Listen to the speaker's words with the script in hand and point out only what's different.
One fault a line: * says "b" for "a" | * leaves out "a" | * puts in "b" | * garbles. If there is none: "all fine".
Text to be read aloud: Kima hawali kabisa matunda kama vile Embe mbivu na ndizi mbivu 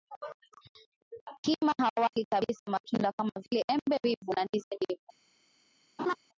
all fine